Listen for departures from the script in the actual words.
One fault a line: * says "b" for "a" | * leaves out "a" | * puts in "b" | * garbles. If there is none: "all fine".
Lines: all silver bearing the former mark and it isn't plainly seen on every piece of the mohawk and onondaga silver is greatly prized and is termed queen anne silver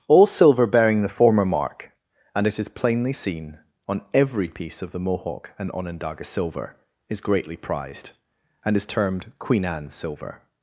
* says "is" for "isn't"